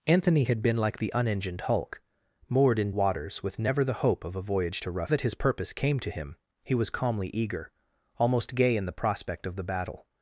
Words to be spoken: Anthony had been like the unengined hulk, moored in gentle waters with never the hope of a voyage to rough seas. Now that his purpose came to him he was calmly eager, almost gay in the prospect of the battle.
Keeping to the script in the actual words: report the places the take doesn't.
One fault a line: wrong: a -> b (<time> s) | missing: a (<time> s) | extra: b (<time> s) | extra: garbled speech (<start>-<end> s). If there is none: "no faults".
missing: gentle (2.9 s)
missing: seas Now (5.1 s)